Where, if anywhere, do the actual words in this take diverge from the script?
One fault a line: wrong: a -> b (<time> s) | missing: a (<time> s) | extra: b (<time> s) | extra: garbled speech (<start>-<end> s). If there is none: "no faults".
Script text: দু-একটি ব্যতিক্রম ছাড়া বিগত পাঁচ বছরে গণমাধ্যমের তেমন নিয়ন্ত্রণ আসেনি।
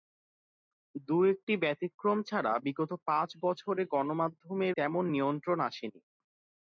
no faults